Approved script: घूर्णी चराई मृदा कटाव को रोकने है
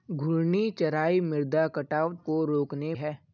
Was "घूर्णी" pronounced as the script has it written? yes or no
yes